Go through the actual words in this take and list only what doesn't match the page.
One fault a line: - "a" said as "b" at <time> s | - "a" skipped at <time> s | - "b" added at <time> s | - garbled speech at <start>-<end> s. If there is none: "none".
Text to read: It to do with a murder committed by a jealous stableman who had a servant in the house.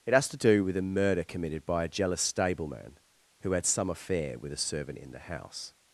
- "has" added at 0.1 s
- "some affair with" added at 3.7 s